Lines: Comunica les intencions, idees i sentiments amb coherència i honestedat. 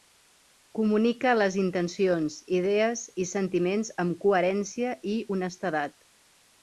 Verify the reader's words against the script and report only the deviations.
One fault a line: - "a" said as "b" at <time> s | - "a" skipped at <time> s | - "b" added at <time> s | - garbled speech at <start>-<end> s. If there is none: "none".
none